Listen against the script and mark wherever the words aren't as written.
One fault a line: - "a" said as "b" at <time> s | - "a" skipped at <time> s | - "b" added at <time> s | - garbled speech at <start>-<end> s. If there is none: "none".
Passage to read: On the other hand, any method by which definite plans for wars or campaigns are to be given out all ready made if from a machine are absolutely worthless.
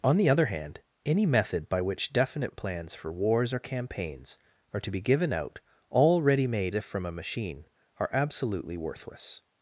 none